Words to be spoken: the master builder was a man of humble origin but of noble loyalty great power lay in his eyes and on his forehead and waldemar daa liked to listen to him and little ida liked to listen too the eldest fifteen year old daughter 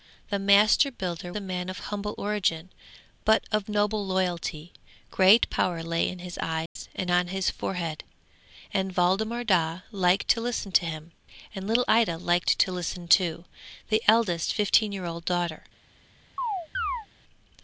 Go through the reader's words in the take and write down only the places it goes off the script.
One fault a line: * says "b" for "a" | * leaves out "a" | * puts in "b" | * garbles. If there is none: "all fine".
* leaves out "was"